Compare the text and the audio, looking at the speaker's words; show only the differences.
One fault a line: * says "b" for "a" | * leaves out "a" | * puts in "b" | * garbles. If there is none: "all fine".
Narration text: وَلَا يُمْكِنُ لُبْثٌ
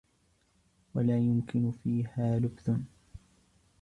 * puts in "فِيهَا"